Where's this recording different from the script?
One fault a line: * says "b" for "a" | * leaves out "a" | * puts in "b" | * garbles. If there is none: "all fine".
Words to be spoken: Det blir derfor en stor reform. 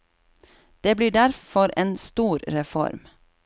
all fine